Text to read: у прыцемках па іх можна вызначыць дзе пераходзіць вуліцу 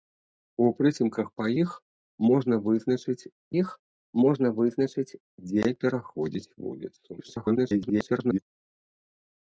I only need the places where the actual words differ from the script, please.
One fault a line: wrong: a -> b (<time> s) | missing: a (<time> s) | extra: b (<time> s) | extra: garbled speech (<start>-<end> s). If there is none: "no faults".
extra: іх можна вызначыць (3.6 s)
extra: garbled speech (7.2-8.4 s)